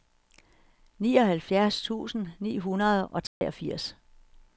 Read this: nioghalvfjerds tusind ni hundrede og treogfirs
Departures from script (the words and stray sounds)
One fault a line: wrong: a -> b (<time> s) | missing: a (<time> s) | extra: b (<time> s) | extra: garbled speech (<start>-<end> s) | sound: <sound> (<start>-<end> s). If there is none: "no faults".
sound: dropout (3.3-3.4 s)